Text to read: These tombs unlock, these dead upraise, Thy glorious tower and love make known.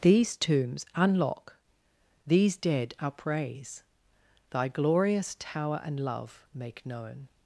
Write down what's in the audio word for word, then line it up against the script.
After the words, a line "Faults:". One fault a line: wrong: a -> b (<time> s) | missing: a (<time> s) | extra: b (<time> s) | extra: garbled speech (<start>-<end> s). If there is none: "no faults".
These tombs unlock, these dead upraise, Thy glorious tower and love make known.
Faults:
no faults